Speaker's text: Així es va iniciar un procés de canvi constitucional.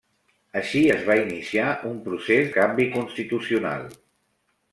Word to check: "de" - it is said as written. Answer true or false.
false